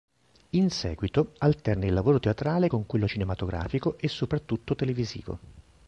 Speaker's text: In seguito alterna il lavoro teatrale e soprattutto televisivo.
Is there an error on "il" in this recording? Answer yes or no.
no